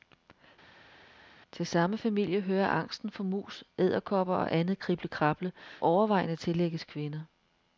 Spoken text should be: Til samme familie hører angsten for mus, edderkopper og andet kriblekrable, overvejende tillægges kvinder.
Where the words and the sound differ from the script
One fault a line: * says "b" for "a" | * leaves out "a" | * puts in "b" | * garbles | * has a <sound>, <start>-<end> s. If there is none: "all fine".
all fine